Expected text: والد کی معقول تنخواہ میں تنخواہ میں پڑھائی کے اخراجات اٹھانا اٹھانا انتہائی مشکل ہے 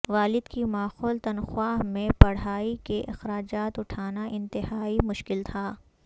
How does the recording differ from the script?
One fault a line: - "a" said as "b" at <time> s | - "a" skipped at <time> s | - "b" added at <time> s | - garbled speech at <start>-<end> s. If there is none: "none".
- "تنخواہ میں" skipped at 2.1 s
- "اٹھانا" skipped at 4.3 s
- "ہے" said as "تھا" at 5.4 s